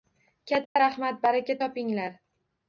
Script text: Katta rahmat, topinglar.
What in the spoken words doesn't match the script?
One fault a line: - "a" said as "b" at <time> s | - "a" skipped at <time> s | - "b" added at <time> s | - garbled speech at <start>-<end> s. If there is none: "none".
- "baraka" added at 1.3 s